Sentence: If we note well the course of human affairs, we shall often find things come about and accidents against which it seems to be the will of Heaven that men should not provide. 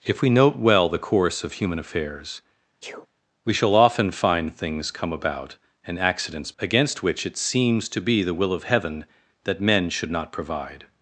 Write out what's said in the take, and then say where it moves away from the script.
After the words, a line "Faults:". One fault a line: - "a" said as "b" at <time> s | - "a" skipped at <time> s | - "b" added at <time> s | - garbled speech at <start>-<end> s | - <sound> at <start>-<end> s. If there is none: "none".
If we note well the course of human affairs, we shall often find things come about and accidents against which it seems to be the will of Heaven that men should not provide.
Faults:
- sneeze at 2.8-3.1 s